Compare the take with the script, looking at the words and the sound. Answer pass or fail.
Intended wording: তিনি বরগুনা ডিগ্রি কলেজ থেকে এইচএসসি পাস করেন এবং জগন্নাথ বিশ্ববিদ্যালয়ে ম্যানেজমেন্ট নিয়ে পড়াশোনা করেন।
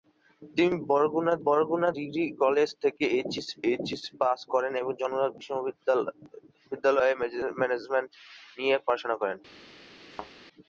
fail